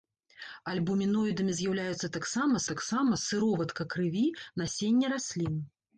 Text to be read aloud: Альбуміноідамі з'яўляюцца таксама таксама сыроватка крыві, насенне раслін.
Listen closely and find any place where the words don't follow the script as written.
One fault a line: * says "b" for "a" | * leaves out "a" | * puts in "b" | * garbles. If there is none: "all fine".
all fine